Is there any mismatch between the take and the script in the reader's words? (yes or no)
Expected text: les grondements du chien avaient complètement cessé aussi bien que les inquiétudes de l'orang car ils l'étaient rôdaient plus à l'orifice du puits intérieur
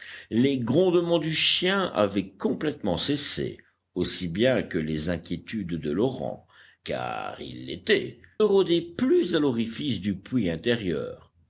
no